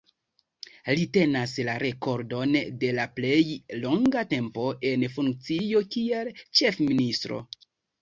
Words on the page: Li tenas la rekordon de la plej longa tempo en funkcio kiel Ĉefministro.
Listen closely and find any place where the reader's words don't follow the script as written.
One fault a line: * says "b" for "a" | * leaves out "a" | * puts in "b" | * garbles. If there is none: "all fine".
all fine